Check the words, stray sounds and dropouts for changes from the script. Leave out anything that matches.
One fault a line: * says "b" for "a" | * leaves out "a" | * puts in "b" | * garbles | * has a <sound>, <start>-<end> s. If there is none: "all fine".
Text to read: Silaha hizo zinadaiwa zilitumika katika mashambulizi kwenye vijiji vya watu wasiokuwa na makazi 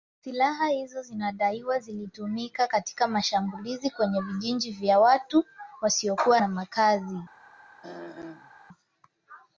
* has a throat clearing, 7.8-8.5 s